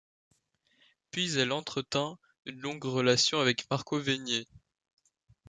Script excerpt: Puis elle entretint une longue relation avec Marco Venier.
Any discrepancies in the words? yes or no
no